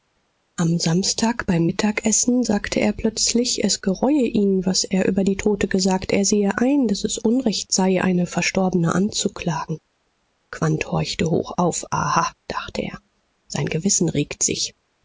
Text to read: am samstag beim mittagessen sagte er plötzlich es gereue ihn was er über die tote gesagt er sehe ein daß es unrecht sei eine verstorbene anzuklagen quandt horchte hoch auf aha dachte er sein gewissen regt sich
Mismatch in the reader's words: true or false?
false